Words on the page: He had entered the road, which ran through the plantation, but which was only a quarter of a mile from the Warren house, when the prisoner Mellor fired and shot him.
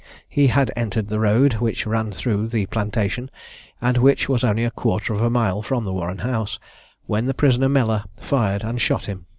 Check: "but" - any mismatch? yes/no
yes